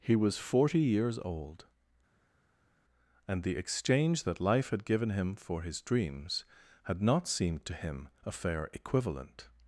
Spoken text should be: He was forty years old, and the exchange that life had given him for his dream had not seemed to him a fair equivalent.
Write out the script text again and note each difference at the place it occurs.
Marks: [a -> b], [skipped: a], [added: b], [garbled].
He was forty years old, and the exchange that life had given him for his [dream -> dreams] had not seemed to him a fair equivalent.